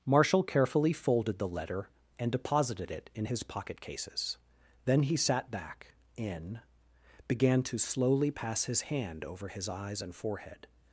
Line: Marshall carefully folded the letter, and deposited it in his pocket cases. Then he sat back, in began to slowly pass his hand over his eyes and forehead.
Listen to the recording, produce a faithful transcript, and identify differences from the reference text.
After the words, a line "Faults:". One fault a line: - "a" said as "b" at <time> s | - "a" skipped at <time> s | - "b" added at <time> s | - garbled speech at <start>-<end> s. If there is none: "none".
Marshall carefully folded the letter, and deposited it in his pocket cases. Then he sat back, in began to slowly pass his hand over his eyes and forehead.
Faults:
none